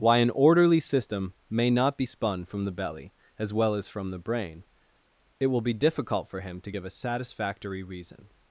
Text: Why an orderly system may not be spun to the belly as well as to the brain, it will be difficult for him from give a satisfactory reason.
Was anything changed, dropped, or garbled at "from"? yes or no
yes